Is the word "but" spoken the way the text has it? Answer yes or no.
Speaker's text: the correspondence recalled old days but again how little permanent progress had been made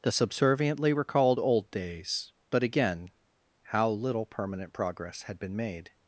yes